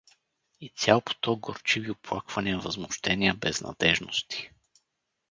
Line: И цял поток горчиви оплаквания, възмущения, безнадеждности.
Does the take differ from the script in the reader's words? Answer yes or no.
no